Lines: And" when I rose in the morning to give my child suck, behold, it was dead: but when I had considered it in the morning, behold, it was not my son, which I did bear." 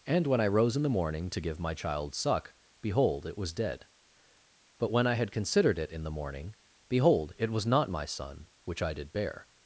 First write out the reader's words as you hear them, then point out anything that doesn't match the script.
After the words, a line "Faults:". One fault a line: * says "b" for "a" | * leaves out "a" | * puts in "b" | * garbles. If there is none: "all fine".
And" when I rose in the morning to give my child suck, behold, it was dead: but when I had considered it in the morning, behold, it was not my son, which I did bear."
Faults:
all fine